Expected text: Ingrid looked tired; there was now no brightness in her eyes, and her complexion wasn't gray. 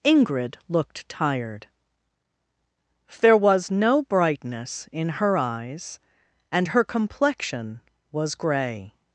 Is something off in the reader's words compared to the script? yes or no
yes